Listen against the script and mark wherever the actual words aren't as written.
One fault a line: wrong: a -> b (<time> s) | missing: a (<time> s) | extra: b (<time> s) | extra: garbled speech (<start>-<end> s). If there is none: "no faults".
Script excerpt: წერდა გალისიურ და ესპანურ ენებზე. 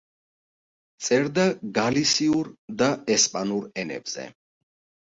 no faults